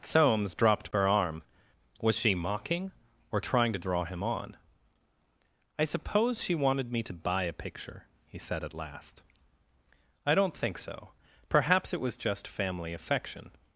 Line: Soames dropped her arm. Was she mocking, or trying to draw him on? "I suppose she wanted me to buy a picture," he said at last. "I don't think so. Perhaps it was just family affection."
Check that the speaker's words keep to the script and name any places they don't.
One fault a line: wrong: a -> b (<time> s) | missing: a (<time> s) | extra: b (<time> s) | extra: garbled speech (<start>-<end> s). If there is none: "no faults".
no faults